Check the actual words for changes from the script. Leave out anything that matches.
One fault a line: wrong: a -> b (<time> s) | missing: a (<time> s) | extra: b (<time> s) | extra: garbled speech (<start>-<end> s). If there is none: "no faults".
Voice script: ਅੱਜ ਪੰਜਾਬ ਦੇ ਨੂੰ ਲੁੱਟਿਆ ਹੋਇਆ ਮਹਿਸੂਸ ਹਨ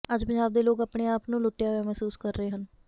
extra: ਲੋਕ ਆਪਣੇ ਆਪ (0.6 s)
extra: ਕਰ ਰਹੇ (2.2 s)